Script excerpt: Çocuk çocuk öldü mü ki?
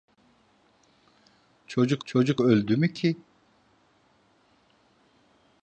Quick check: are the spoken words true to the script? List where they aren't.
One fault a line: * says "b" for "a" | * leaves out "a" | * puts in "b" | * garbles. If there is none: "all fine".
all fine